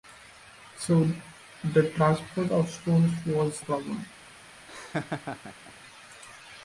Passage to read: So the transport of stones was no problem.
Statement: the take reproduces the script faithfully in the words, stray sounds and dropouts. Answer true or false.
false